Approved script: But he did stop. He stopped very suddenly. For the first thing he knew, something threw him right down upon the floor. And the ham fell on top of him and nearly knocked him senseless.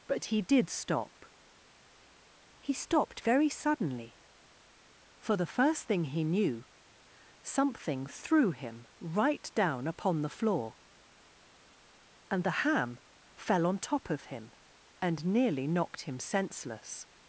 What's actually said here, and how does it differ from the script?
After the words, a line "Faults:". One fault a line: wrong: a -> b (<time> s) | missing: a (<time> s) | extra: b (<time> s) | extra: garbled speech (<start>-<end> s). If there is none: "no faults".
But he did stop. He stopped very suddenly. For the first thing he knew, something threw him right down upon the floor. And the ham fell on top of him and nearly knocked him senseless.
Faults:
no faults